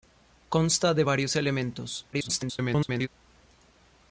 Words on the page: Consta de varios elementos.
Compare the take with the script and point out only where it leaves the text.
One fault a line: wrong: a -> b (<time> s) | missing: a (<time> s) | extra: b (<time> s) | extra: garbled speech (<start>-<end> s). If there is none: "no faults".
extra: garbled speech (2.1-3.1 s)